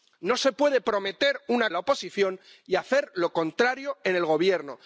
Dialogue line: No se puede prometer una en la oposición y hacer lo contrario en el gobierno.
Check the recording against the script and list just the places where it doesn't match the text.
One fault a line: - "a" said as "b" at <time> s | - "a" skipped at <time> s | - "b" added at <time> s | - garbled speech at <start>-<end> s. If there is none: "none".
none